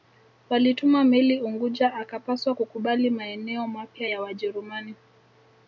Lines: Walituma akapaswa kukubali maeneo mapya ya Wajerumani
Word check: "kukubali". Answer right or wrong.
right